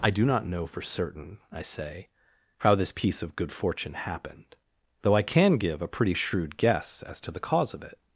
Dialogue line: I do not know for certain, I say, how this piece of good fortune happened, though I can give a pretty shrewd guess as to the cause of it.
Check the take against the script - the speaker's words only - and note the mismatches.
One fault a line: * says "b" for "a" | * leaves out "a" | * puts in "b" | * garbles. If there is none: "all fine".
all fine